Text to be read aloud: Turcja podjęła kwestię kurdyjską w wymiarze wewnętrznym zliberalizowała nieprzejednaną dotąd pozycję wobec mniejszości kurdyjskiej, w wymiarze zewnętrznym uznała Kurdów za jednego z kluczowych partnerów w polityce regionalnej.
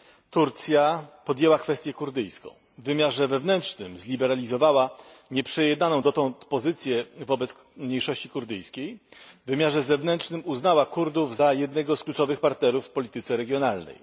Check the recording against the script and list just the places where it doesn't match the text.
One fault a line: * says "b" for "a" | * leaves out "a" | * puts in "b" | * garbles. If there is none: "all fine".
all fine